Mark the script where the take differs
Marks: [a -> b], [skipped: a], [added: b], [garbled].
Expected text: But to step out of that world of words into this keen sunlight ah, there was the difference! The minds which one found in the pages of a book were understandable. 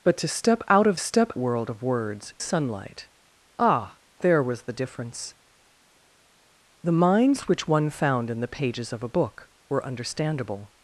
But to step out of [that -> step] world of words [skipped: into this keen] sunlight ah, there was the difference! The minds which one found in the pages of a book were understandable.